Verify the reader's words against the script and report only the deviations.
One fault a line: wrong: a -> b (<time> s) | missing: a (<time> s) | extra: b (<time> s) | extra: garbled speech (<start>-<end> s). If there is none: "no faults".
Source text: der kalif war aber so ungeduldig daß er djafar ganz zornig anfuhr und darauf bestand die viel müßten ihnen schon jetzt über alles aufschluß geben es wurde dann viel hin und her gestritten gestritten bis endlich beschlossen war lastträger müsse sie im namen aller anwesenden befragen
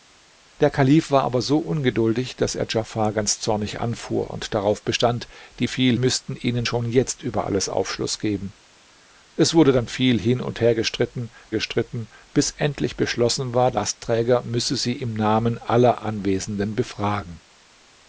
no faults